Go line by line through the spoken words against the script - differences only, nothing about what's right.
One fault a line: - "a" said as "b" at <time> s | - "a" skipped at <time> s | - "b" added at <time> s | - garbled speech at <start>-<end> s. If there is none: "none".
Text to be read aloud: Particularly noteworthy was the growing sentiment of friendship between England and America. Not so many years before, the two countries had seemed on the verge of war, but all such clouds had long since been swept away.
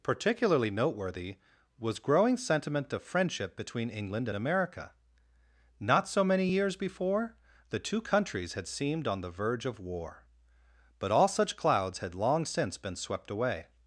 - "the" skipped at 2.0 s